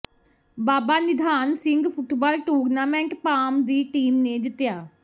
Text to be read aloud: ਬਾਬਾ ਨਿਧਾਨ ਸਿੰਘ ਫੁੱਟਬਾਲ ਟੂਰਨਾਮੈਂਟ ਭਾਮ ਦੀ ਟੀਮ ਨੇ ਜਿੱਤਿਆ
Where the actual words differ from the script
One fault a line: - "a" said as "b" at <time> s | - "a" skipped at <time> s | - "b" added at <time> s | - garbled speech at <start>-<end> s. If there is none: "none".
none